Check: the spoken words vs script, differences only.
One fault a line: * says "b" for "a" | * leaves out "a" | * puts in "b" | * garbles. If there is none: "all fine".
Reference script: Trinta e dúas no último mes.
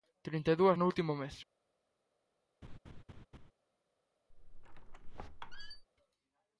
all fine